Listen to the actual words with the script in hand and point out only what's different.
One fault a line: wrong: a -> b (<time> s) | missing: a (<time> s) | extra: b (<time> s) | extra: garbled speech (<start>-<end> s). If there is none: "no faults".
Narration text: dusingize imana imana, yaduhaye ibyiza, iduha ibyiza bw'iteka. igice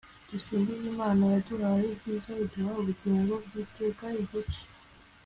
missing: imana (1.2 s)
wrong: ibyiza -> ubugingo (2.8 s)